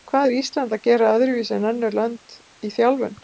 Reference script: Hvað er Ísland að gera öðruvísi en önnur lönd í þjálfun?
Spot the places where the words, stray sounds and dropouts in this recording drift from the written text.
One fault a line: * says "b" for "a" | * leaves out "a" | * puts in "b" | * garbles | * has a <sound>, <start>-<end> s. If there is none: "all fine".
all fine